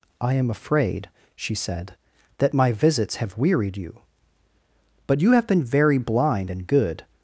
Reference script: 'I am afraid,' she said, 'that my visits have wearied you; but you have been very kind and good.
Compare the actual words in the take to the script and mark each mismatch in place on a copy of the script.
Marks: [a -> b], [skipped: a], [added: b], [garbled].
'I am afraid,' she said, 'that my visits have wearied you; but you have been very [kind -> blind] and good.